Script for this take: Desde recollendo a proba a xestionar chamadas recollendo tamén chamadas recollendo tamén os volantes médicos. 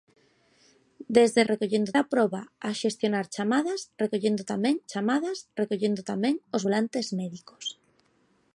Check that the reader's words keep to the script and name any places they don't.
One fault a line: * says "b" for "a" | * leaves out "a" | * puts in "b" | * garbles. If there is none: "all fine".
all fine